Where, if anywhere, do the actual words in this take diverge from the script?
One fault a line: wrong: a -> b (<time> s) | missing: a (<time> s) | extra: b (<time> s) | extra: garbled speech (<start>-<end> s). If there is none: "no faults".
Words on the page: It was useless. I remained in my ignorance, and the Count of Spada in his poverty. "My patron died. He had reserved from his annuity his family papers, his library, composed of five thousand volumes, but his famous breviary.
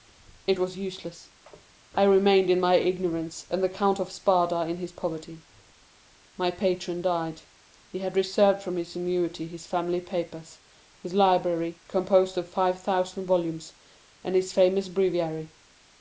wrong: but -> and (14.2 s)